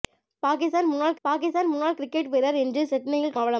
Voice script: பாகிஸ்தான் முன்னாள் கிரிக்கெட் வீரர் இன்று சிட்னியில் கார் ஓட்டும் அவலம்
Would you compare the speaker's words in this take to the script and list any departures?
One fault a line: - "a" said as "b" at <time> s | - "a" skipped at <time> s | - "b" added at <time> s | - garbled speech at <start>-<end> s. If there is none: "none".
- "பாகிஸ்தான் முன்னாள்" added at 1.2 s
- "கார் ஓட்டும்" skipped at 3.4 s